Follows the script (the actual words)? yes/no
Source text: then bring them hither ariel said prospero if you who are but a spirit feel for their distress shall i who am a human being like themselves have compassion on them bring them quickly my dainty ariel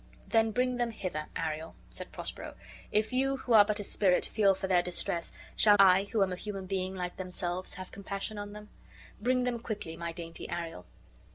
yes